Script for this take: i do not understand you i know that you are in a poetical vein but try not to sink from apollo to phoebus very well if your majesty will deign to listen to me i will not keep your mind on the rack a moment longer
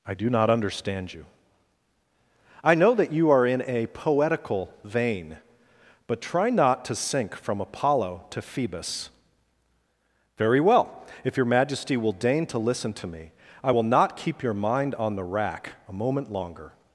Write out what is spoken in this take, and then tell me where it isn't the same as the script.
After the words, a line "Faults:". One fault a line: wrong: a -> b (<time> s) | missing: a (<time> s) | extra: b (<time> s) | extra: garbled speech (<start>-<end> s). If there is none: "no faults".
i do not understand you i know that you are in a poetical vein but try not to sink from apollo to phoebus very well if your majesty will deign to listen to me i will not keep your mind on the rack a moment longer
Faults:
no faults